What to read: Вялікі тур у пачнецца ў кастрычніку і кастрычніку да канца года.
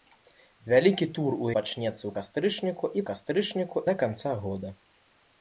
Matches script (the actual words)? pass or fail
pass